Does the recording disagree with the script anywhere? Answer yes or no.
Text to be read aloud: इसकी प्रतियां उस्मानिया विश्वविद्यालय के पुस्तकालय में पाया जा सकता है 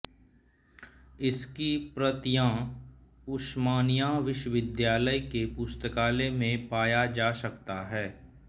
no